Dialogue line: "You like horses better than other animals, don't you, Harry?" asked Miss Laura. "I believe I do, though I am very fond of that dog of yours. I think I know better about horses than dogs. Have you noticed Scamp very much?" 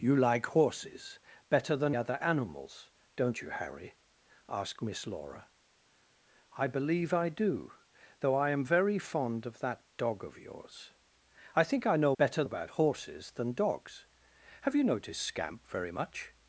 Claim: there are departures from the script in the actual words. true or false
false